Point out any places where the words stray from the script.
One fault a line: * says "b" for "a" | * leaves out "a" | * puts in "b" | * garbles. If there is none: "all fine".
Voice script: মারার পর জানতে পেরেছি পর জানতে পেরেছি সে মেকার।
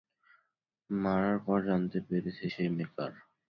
* leaves out "পর জানতে পেরেছি"